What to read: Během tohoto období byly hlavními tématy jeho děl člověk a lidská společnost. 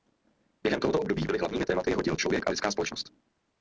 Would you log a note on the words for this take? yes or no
no